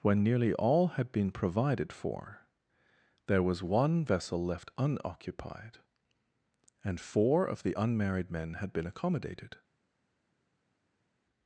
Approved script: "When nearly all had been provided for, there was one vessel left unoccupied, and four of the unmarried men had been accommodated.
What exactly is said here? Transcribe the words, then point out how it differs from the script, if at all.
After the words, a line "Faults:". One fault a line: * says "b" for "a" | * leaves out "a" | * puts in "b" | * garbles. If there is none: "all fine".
"When nearly all had been provided for, there was one vessel left unoccupied, and four of the unmarried men had been accommodated.
Faults:
all fine